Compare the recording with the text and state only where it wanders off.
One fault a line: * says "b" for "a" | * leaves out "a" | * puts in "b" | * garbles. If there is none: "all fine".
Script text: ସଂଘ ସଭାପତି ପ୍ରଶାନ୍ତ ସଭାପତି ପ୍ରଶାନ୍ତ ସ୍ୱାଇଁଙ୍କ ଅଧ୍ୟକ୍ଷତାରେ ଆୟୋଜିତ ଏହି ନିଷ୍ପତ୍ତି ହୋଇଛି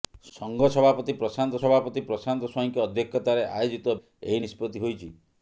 all fine